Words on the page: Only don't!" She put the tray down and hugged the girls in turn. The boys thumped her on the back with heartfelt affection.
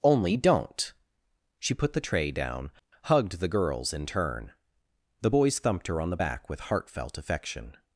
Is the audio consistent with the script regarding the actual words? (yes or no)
no